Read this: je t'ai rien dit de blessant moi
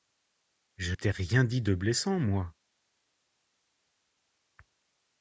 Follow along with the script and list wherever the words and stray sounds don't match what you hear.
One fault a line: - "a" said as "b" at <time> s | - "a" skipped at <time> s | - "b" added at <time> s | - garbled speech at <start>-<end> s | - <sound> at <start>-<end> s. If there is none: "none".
none